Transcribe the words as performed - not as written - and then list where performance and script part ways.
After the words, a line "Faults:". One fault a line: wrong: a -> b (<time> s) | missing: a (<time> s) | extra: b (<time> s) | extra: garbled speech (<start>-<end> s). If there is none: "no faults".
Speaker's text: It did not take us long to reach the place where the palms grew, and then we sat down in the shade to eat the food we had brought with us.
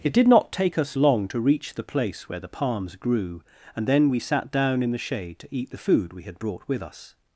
It did not take us long to reach the place where the palms grew, and then we sat down in the shade to eat the food we had brought with us.
Faults:
no faults